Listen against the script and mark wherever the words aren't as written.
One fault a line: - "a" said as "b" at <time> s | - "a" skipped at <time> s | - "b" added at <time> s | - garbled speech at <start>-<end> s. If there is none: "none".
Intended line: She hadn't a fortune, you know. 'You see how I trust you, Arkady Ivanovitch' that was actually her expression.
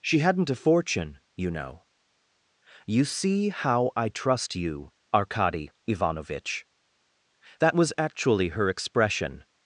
none